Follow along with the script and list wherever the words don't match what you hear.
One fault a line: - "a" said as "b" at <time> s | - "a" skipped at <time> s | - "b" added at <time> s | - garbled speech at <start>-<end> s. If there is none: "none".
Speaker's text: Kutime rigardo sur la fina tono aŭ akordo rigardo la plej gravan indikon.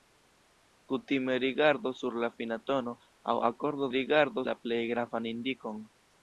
none